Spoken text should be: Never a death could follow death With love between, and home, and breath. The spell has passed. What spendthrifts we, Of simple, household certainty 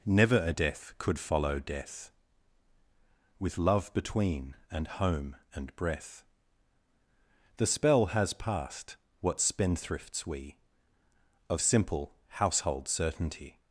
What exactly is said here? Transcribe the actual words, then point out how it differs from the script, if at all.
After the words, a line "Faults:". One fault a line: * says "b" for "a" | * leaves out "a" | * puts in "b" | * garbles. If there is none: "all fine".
Never a death could follow death With love between, and home, and breath. The spell has passed. What spendthrifts we, Of simple, household certainty
Faults:
all fine